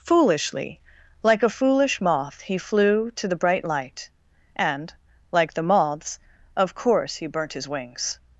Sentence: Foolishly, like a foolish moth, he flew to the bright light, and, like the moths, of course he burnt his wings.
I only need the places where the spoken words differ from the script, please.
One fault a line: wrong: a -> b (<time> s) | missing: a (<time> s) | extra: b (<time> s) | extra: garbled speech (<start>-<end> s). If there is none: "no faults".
no faults